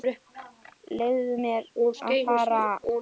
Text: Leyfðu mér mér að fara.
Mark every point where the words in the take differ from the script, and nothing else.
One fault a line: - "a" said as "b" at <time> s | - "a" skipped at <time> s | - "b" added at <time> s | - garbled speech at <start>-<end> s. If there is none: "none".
- "mér" skipped at 1.7 s